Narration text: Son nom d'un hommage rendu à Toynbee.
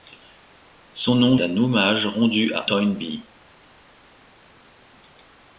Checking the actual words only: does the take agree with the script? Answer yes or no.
yes